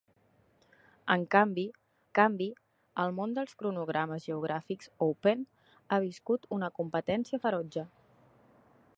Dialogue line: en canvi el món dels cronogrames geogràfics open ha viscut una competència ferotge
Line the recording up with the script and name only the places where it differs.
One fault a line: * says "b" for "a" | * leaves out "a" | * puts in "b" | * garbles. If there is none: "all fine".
* puts in "canvi"